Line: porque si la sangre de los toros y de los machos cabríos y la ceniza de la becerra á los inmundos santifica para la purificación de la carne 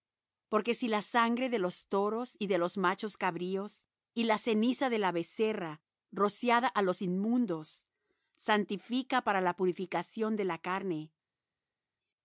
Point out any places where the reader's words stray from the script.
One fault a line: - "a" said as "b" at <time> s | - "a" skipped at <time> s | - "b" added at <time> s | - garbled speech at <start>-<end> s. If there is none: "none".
- "rociada" added at 6.1 s